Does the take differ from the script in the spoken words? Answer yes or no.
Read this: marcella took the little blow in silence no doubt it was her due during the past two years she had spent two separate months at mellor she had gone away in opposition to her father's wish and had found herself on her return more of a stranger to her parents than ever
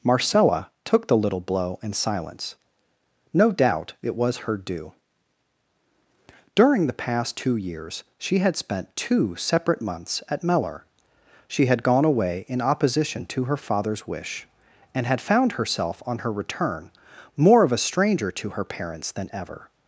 no